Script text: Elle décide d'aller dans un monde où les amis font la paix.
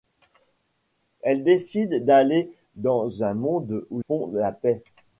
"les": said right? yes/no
no